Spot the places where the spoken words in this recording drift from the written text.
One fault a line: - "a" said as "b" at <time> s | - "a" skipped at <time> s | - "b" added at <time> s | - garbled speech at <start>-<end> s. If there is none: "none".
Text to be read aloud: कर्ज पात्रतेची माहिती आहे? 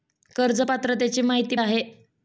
none